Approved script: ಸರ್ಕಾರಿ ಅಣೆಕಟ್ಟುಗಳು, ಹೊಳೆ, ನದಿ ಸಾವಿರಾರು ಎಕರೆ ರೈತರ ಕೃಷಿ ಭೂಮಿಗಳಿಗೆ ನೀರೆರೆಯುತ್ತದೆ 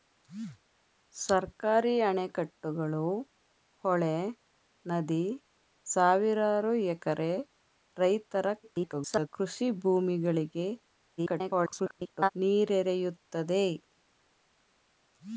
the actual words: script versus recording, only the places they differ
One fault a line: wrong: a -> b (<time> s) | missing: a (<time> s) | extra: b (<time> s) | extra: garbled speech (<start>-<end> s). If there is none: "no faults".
extra: garbled speech (8.6-9.3 s)
extra: garbled speech (11.2-12.3 s)